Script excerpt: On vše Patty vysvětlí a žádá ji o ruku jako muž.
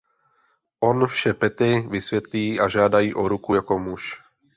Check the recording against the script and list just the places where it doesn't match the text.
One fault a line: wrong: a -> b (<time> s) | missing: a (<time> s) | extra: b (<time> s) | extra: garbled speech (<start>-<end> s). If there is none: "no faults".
no faults